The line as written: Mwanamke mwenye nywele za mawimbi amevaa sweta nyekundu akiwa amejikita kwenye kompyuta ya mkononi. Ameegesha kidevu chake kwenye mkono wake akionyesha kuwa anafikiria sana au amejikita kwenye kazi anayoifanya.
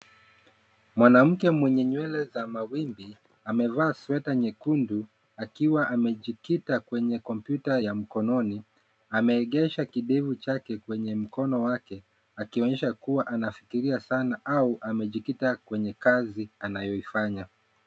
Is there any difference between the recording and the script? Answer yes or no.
no